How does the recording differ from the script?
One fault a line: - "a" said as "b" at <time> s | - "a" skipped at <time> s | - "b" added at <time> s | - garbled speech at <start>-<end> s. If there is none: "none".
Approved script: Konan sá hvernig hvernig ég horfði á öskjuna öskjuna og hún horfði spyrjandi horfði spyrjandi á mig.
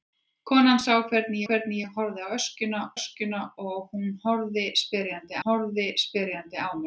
none